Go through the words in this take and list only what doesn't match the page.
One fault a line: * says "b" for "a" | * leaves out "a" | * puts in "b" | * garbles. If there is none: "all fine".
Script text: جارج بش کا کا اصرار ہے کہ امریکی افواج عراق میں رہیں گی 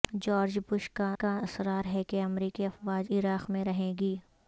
all fine